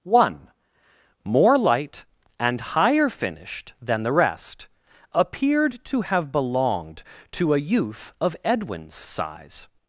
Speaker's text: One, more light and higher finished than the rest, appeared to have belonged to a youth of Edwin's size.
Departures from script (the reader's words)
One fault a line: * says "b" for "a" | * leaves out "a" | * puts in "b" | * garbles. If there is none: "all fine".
all fine